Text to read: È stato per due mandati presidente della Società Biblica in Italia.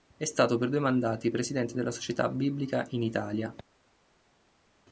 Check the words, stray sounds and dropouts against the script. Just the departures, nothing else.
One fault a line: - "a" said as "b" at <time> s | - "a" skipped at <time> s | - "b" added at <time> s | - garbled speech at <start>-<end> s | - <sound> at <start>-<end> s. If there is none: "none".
none